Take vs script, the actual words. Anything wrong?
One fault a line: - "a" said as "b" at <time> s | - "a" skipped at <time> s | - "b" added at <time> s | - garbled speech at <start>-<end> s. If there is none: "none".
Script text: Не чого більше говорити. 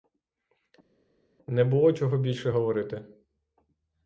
- "було" added at 1.6 s